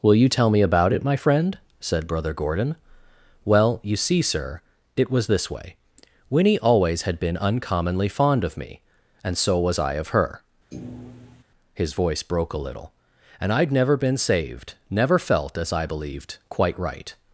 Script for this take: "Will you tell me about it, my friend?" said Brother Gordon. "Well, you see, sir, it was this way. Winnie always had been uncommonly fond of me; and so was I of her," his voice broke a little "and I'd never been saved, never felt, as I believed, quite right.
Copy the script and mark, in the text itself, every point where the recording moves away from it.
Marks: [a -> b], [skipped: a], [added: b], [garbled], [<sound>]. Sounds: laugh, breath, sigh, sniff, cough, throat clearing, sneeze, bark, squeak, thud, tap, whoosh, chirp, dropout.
"Will you tell me about it, my friend?" said Brother Gordon. "Well, you see, sir, it was this way. Winnie always had been uncommonly fond of me; and so was I of her," [thud] his voice broke a little "and I'd never been saved, never felt, as I believed, quite right.